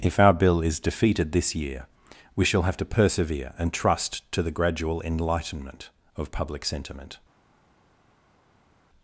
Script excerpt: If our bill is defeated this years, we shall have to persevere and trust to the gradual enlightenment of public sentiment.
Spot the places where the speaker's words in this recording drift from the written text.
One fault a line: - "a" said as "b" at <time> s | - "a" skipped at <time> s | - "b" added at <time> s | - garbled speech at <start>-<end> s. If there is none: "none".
- "years" said as "year" at 1.5 s